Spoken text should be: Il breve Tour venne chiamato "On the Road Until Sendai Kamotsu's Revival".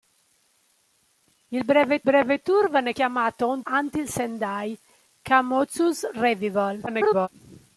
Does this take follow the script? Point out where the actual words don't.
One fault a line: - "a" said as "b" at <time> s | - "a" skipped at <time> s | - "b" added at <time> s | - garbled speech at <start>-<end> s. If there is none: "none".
- "breve" added at 2.0 s
- "the Road" skipped at 3.6 s
- garbled speech at 6.9-7.3 s